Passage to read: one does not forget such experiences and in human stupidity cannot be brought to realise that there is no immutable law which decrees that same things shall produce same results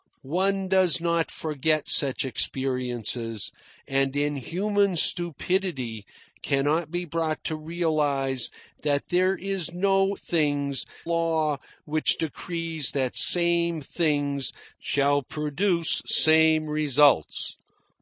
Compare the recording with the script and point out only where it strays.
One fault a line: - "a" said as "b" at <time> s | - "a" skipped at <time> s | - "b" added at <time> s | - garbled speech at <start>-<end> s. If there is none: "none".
- "immutable" said as "things" at 10.1 s